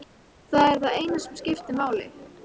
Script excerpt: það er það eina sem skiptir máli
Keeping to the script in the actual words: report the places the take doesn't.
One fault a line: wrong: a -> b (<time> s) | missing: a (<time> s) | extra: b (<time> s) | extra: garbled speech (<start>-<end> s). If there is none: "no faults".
no faults